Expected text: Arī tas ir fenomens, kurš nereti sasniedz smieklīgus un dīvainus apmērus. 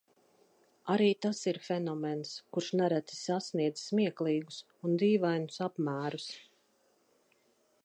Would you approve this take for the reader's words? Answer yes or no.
yes